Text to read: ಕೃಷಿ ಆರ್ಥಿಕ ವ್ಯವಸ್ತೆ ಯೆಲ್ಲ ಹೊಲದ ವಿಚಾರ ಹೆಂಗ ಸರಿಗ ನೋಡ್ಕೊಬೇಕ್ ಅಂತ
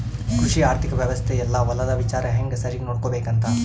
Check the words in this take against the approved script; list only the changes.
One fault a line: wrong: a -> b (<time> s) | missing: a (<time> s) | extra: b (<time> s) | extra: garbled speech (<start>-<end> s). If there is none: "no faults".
no faults